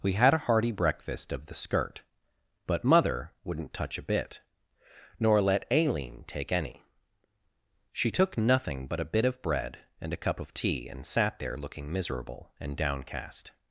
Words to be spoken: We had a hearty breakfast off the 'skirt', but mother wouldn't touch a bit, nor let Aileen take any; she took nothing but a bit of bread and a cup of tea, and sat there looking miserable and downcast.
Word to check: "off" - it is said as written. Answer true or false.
false